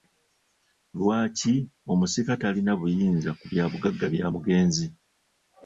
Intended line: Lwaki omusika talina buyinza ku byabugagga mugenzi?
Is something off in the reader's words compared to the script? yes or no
yes